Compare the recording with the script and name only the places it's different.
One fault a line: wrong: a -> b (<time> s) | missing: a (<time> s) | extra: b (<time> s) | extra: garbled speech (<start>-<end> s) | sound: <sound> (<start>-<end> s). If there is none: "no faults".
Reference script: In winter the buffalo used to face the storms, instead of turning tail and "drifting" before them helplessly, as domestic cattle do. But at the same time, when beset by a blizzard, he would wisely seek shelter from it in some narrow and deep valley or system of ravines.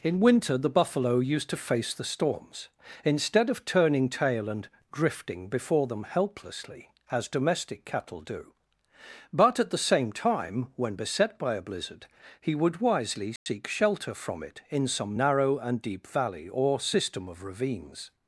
sound: dropout (13.4-13.5 s)